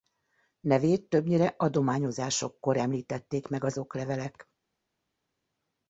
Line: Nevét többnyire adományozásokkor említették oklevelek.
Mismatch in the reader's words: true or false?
true